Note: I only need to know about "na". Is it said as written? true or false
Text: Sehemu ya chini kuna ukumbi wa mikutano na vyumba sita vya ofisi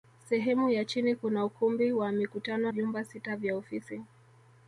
false